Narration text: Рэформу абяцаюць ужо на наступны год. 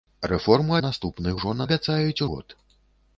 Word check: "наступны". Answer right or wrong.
wrong